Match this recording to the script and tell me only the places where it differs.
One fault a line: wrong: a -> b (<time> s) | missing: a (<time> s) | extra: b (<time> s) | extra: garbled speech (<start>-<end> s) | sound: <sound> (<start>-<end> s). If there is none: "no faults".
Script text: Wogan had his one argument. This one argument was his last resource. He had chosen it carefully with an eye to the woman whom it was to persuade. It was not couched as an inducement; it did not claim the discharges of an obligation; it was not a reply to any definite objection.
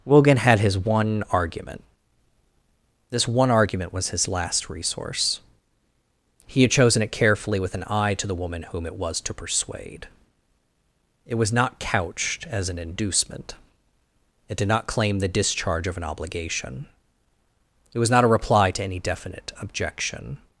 wrong: discharges -> discharge (15.3 s)